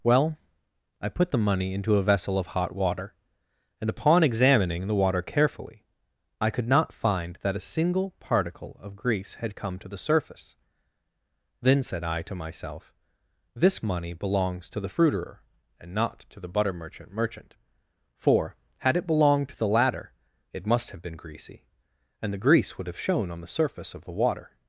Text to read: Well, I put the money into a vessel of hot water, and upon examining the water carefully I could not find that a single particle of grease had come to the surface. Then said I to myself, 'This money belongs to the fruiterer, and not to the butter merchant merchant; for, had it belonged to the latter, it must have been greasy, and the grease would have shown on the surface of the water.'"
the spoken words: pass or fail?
pass